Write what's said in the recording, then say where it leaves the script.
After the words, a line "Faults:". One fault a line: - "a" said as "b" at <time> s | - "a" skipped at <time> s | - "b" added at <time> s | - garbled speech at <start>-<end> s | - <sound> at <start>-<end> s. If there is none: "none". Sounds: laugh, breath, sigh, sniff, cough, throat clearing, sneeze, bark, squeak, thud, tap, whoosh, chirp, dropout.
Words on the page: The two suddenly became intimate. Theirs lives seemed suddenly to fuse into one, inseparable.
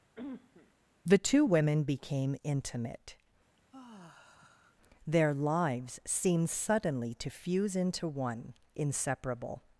The two women became intimate. Their lives seemed suddenly to fuse into one, inseparable.
Faults:
- cough at 0.2-0.7 s
- "suddenly" said as "women" at 1.4 s
- sigh at 3.6-4.8 s
- "Theirs" said as "Their" at 5.0 s